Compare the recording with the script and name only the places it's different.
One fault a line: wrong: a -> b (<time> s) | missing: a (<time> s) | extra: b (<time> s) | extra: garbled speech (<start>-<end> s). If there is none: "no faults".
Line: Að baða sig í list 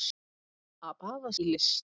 missing: sig (1.3 s)